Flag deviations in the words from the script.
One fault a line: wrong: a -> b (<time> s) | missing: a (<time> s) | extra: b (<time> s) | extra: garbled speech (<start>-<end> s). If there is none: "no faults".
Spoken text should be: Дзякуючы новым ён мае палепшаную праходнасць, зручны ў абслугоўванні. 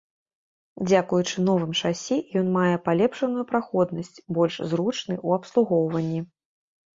extra: шасі (1.8 s)
extra: больш (4.4 s)